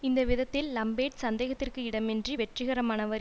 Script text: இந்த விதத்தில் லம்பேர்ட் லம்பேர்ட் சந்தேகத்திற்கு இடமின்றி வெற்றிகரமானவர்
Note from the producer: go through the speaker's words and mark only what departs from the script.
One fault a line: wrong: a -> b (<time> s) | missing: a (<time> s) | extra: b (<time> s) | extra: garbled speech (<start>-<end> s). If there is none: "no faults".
missing: லம்பேர்ட் (1.2 s)